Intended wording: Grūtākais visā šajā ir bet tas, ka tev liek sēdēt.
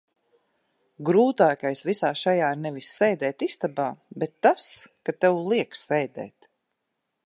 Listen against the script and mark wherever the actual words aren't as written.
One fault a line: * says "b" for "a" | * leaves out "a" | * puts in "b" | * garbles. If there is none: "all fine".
* puts in "nevis sēdēt istabā"